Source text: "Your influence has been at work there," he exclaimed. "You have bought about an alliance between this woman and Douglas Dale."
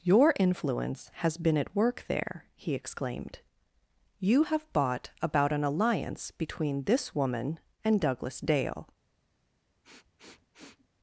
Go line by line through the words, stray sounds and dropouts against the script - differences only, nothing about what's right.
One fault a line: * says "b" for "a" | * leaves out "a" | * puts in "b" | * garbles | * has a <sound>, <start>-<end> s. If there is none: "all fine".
* has a sniff, 9.8-10.9 s